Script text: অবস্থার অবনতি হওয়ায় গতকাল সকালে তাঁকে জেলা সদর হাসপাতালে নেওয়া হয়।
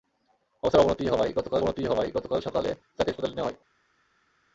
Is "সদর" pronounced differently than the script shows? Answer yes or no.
yes